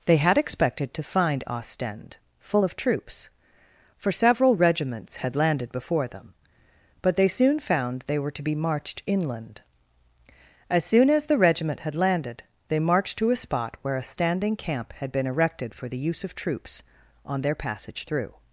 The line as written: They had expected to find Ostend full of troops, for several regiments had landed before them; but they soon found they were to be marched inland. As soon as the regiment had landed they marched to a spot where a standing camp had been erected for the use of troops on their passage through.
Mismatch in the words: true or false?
false